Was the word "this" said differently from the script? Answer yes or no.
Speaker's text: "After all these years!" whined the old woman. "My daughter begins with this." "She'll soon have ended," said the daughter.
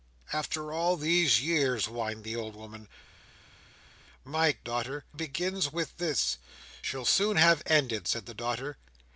no